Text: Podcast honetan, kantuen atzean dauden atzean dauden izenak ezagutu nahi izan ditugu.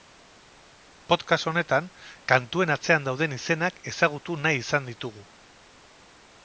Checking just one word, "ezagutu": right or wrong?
right